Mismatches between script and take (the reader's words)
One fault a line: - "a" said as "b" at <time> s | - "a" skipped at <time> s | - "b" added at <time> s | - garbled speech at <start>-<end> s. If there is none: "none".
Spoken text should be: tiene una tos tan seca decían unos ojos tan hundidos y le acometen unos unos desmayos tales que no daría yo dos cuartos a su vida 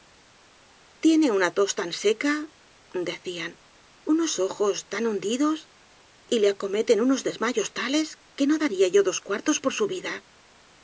- "unos" skipped at 7.2 s
- "a" said as "por" at 9.6 s